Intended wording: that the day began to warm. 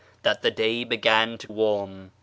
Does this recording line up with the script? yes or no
yes